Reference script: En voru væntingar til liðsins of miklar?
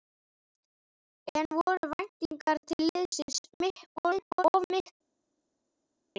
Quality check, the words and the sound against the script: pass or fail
fail